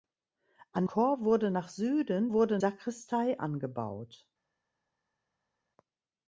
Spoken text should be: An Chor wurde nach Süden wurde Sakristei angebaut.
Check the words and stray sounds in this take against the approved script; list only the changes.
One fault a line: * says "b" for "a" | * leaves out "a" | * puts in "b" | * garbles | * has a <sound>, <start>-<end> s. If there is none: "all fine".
all fine